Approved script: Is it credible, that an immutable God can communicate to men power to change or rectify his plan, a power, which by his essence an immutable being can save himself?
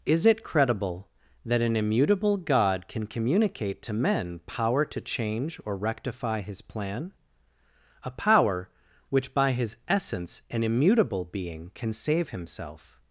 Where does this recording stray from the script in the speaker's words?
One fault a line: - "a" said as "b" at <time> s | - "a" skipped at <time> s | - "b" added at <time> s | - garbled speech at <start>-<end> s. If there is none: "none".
none